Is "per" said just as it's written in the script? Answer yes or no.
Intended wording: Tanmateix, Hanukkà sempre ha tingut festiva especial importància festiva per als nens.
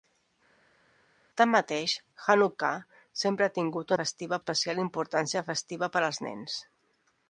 yes